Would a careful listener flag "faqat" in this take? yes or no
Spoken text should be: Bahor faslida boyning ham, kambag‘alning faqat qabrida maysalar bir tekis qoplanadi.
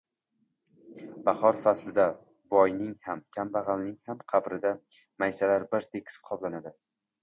yes